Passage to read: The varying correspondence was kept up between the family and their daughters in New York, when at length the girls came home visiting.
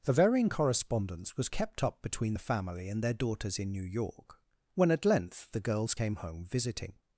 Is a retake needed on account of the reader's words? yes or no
no